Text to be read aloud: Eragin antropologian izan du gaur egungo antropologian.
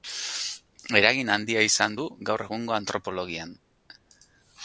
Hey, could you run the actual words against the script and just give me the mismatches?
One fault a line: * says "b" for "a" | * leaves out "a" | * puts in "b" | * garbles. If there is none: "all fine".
* says "handia" for "antropologian"